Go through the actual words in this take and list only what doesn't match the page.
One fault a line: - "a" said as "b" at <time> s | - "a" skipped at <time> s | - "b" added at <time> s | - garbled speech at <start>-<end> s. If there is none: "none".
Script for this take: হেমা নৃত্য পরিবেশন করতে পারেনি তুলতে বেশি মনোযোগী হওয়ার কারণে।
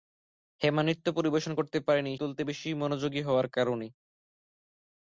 none